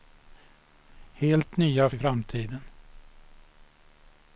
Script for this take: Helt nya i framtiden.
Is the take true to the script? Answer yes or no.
yes